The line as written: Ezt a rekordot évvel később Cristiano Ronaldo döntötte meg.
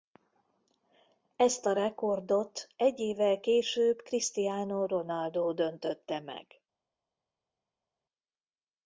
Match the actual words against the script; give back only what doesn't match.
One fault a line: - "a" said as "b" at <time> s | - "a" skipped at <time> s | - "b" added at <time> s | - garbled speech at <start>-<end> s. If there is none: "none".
- "egy" added at 2.8 s